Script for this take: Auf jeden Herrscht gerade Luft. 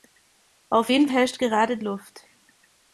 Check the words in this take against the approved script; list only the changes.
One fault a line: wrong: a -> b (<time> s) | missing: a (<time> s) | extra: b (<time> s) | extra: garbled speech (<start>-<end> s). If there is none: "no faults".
no faults